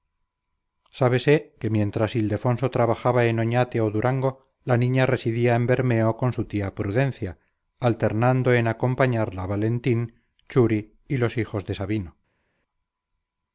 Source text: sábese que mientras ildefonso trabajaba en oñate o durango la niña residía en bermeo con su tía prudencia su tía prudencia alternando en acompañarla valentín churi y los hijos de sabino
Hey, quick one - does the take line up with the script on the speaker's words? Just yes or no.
no